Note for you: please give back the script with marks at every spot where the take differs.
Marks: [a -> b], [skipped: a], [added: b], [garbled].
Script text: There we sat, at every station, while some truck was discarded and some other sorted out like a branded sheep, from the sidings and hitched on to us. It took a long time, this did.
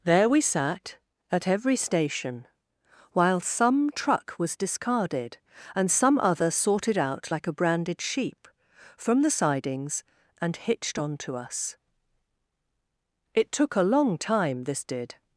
There we sat, at every station, while some truck was discarded and some other sorted out like a branded sheep, from the sidings and hitched on to us. It took a long time, this did.